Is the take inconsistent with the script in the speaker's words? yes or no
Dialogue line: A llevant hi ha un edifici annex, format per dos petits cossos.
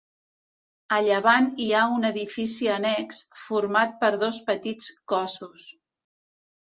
no